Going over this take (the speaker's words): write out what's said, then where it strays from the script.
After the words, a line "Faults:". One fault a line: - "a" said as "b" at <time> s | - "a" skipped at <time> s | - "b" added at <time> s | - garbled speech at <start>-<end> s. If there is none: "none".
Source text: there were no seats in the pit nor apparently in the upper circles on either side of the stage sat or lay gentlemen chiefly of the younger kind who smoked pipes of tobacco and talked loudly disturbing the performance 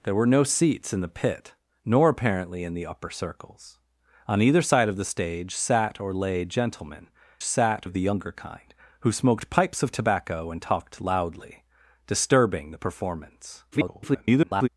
there were no seats in the pit nor apparently in the upper circles on either side of the stage sat or lay gentlemen sat of the younger kind who smoked pipes of tobacco and talked loudly disturbing the performance [garbled]
Faults:
- "chiefly" said as "sat" at 7.4 s
- garbled speech at 13.7-14.7 s